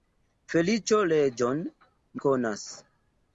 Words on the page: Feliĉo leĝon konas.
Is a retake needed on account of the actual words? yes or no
no